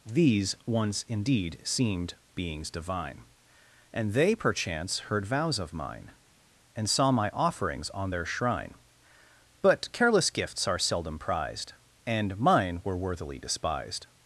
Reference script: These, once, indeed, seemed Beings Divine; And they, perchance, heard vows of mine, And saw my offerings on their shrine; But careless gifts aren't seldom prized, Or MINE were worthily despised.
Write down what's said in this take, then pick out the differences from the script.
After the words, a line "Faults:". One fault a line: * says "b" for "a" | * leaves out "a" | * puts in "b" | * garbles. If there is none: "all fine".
These, once, indeed, seemed Beings Divine; And they, perchance, heard vows of mine, And saw my offerings on their shrine; But careless gifts are seldom prized, And MINE were worthily despised.
Faults:
* says "are" for "aren't"
* says "And" for "Or"